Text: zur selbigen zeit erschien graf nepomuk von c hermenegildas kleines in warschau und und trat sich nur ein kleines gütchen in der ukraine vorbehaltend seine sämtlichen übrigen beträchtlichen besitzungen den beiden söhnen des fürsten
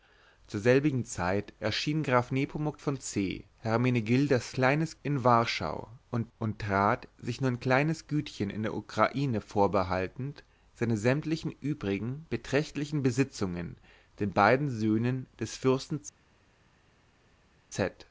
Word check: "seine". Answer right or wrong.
right